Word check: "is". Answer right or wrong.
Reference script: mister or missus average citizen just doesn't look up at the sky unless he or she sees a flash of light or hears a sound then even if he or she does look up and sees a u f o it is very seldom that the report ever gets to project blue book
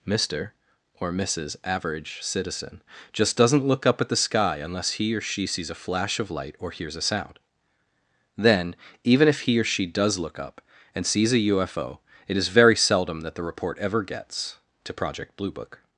right